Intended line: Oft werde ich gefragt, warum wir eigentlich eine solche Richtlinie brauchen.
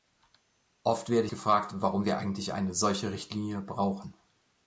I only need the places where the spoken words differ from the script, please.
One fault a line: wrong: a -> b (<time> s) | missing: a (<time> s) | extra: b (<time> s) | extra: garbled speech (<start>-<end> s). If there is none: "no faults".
missing: ich (1.3 s)